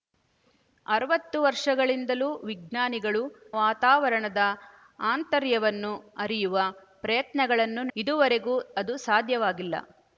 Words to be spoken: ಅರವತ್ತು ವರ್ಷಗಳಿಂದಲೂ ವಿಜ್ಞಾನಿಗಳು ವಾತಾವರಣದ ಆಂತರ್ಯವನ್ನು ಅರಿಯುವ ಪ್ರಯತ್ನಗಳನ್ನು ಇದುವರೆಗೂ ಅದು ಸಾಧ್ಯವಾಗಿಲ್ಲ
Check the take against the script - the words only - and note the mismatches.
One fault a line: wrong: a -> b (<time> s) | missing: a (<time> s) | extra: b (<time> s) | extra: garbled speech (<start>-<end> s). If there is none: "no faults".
no faults